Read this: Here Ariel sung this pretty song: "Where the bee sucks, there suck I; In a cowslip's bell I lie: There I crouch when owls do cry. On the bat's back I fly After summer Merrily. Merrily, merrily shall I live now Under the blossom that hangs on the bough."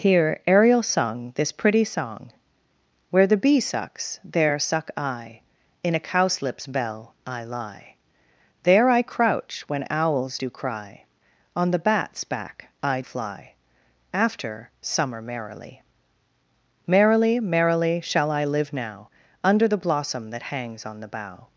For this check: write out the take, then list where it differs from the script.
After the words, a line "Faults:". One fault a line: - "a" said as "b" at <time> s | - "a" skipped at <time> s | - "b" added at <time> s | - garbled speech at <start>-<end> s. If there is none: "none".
Here Ariel sung this pretty song: "Where the bee sucks, there suck I; In a cowslip's bell I lie: There I crouch when owls do cry. On the bat's back I fly After summer Merrily. Merrily, merrily shall I live now Under the blossom that hangs on the bough."
Faults:
none